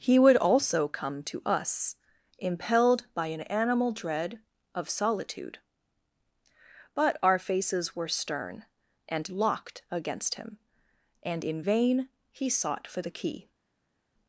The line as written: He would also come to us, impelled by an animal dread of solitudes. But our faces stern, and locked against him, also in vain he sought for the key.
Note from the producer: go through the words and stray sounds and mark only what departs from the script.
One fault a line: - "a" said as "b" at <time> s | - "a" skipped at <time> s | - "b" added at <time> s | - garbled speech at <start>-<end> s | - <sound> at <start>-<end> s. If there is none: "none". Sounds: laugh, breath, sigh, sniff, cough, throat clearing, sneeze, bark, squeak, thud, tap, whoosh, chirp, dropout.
- "solitudes" said as "solitude" at 4.9 s
- "were" added at 8.0 s
- "also" said as "and" at 11.2 s